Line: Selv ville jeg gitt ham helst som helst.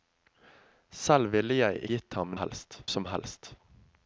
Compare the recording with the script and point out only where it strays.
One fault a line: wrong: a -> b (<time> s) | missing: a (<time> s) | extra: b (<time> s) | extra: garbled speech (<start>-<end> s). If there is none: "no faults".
no faults